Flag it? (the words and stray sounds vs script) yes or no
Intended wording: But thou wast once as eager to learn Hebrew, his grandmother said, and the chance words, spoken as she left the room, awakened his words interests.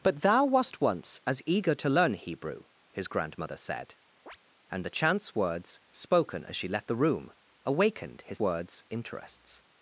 yes